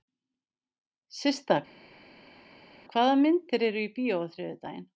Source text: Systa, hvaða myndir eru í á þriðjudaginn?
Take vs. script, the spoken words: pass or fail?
fail